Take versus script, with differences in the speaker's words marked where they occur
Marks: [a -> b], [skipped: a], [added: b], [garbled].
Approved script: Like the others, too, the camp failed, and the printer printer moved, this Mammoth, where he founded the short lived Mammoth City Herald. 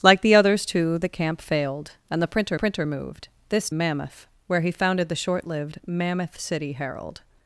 Like the others, too, the camp failed, and the printer printer moved, this Mammoth, where he founded the short lived Mammoth City Herald.